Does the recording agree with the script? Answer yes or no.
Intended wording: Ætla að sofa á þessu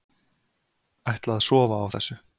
yes